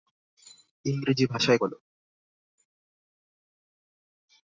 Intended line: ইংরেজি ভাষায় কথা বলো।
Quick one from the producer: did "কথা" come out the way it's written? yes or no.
no